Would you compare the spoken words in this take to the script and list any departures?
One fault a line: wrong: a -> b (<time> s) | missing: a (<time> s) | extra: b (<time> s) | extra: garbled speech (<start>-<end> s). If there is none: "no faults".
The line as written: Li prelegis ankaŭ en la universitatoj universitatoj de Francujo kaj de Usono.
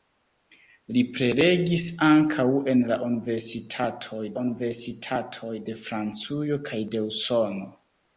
no faults